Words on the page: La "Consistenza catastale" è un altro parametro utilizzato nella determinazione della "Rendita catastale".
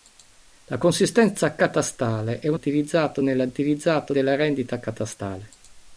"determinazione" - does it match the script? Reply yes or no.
no